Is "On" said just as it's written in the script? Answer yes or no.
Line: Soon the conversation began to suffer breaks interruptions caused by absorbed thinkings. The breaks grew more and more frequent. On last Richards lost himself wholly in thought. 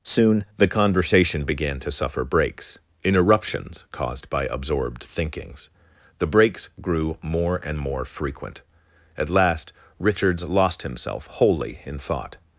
no